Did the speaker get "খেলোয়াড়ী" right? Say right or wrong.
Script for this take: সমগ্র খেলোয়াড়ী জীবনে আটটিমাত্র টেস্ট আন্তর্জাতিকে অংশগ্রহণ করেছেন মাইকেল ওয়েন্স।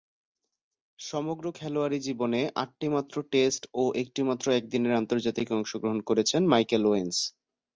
right